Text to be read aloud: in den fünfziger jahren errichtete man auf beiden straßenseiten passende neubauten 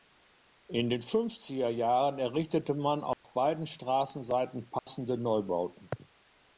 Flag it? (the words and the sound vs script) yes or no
yes